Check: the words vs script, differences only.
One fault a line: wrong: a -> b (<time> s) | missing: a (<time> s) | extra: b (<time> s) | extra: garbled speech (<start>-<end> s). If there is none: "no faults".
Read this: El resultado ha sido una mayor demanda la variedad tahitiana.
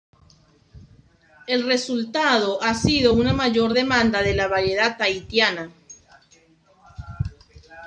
extra: de (4.2 s)